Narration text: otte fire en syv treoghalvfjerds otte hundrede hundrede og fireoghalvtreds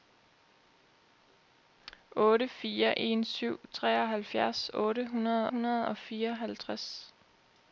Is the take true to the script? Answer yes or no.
yes